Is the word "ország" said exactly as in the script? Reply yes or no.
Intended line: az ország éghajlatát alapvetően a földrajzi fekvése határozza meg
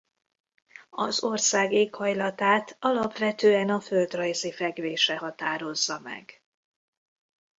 yes